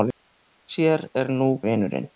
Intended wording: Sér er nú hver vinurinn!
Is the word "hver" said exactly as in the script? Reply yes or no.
no